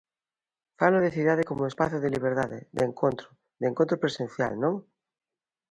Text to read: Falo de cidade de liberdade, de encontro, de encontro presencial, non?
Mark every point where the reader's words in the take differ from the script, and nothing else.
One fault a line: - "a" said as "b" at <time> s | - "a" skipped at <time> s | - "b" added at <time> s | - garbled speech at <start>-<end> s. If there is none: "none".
- "como espazo" added at 1.5 s